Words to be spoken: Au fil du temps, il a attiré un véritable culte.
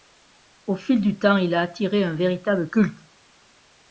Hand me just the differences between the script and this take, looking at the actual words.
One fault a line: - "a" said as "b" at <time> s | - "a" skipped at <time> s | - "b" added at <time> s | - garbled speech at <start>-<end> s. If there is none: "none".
none